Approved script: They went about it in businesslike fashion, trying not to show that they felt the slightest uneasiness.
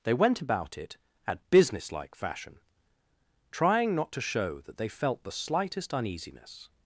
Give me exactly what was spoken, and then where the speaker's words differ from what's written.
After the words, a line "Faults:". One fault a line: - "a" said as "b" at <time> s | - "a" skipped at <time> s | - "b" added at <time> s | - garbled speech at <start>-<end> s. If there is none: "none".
They went about it at businesslike fashion, trying not to show that they felt the slightest uneasiness.
Faults:
- "in" said as "at" at 1.3 s